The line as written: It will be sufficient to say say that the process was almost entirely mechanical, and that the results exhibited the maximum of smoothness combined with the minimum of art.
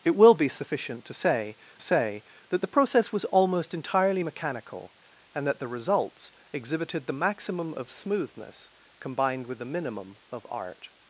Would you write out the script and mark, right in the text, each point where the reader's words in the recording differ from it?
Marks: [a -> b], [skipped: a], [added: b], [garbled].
It will be sufficient to say say that the process was almost entirely mechanical, and that the results exhibited the maximum of smoothness combined with the minimum of art.